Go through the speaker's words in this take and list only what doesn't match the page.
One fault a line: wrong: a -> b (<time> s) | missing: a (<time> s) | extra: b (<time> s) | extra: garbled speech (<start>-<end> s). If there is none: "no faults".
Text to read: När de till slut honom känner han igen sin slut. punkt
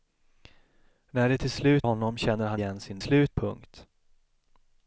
no faults